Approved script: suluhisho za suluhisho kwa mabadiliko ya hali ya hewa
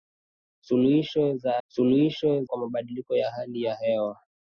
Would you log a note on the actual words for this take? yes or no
no